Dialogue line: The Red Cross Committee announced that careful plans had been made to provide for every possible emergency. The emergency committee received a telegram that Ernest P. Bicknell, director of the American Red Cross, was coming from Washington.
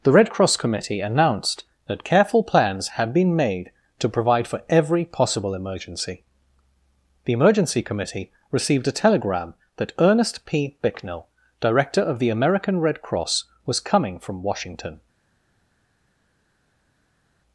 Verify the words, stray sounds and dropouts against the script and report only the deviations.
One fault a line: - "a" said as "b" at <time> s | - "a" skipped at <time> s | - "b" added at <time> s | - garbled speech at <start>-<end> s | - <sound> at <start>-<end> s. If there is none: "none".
none